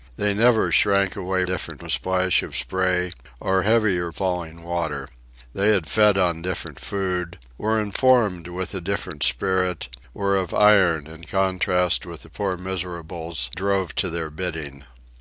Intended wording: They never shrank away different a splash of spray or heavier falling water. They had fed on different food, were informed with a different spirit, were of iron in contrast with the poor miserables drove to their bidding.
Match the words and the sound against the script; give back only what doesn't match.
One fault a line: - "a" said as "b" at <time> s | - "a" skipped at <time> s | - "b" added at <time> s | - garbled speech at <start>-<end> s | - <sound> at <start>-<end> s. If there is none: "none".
none